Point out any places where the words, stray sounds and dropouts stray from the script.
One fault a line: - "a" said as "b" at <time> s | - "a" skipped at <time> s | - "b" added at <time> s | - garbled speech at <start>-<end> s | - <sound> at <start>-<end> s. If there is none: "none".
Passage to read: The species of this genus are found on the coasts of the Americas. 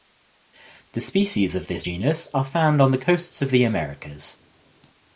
none